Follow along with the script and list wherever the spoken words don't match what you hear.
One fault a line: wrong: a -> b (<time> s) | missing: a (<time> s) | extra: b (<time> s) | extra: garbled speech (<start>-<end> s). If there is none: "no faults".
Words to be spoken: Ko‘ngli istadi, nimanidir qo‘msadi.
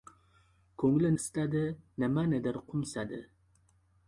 no faults